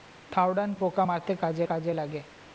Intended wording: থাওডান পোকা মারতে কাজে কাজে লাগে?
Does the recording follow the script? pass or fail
pass